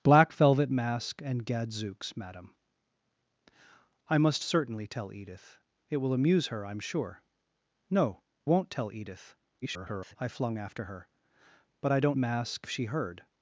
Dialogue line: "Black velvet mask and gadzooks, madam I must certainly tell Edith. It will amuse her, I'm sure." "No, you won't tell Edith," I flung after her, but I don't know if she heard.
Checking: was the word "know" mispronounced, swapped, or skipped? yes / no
yes